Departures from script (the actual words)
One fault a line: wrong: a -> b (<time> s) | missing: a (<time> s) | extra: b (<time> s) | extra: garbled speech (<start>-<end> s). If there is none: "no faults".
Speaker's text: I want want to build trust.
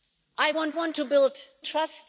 no faults